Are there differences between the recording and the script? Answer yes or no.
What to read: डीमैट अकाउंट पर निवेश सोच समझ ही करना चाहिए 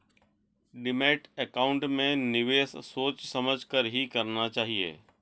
yes